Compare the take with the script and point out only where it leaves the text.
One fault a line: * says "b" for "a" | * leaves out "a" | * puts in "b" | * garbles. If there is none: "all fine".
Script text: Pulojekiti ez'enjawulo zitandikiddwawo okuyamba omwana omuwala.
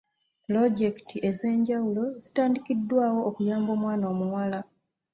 all fine